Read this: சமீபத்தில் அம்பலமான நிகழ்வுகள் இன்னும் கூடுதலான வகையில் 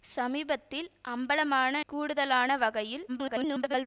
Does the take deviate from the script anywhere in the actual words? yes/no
yes